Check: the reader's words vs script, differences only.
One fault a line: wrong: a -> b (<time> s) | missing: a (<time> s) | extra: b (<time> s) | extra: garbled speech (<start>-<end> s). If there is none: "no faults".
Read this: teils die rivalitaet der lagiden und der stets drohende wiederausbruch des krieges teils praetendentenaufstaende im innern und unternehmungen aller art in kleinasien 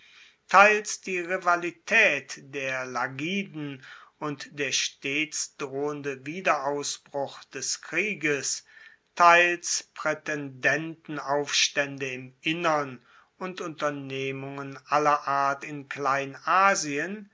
no faults